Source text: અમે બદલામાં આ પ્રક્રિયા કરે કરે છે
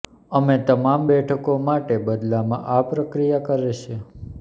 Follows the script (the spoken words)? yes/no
no